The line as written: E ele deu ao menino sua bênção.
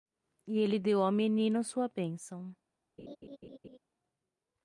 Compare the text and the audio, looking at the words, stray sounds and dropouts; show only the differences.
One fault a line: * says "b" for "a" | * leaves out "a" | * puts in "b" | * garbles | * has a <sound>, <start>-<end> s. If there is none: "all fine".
* has a laugh, 3.0-3.8 s